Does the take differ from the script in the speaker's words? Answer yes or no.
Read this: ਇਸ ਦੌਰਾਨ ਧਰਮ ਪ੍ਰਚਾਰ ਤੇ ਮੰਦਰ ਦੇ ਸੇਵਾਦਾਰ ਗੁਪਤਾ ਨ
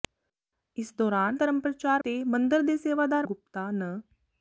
no